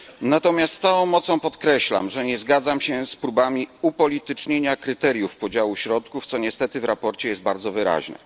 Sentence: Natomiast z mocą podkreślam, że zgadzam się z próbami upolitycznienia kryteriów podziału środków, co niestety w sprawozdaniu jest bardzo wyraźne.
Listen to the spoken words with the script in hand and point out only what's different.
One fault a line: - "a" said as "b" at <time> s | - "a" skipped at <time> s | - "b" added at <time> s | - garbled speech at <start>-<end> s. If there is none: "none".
- "całą" added at 0.8 s
- "nie" added at 2.3 s